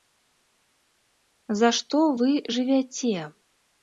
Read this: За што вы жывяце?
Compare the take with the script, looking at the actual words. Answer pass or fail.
pass